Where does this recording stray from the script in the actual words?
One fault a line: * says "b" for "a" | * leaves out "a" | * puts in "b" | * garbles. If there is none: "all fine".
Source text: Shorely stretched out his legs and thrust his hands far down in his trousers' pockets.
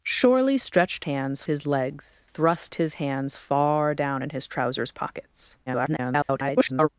* says "hands" for "out"
* leaves out "and"
* garbles